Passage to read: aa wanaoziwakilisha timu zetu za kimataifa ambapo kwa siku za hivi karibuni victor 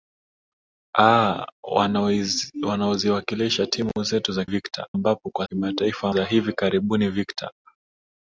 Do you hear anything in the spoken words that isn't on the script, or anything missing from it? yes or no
yes